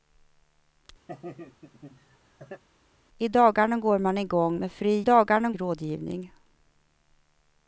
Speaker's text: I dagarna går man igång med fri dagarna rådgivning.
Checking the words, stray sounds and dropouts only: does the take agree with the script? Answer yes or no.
no